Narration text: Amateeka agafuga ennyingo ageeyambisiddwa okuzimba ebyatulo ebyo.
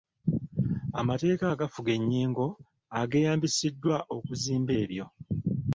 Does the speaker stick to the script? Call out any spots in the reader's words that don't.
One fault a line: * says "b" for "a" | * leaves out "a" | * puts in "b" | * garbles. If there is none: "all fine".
* leaves out "ebyatulo"